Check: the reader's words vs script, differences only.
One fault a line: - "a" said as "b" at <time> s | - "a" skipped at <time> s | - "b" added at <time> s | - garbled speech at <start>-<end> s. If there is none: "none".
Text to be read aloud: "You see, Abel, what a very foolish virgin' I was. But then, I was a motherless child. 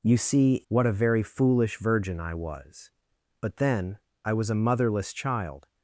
- "Abel" skipped at 0.6 s